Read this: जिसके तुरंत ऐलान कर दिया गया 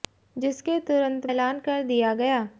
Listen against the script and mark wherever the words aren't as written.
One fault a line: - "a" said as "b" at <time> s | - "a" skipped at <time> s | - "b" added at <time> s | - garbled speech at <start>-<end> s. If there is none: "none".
none